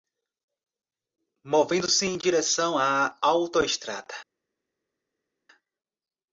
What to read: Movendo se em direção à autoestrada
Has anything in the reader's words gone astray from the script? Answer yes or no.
no